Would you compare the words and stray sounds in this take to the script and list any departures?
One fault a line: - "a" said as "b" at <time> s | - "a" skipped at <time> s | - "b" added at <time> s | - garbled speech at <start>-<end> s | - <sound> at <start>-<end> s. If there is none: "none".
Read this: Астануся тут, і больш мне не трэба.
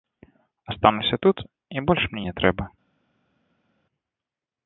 none